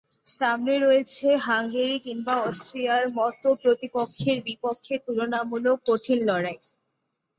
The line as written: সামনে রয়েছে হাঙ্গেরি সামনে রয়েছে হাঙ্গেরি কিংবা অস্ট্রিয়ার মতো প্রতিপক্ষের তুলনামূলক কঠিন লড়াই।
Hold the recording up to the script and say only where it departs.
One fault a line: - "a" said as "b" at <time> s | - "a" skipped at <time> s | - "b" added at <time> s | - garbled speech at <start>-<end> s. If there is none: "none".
- "সামনে রয়েছে হাঙ্গেরি" skipped at 2.0 s
- "বিপক্ষে" added at 4.5 s